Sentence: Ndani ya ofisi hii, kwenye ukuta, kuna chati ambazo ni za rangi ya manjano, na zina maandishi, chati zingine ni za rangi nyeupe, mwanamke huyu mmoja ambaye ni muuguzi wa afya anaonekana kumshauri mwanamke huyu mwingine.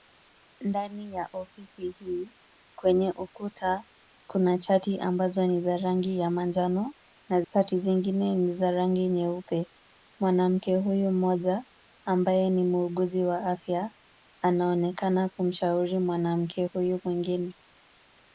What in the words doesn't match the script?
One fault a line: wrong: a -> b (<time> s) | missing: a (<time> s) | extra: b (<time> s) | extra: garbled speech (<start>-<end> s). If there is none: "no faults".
missing: zina maandishi (7.4 s)